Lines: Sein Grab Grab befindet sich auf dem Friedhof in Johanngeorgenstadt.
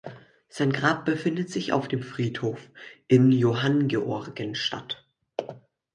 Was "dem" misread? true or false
false